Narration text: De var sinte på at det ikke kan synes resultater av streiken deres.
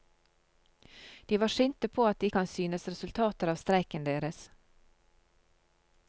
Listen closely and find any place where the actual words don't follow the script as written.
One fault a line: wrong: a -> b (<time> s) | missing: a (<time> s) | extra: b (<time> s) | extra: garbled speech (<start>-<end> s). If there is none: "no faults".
missing: ikke (2.3 s)